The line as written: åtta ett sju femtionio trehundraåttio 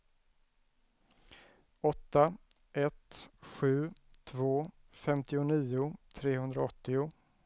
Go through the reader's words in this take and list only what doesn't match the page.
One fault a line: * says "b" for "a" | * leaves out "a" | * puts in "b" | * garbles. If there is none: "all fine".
* puts in "två"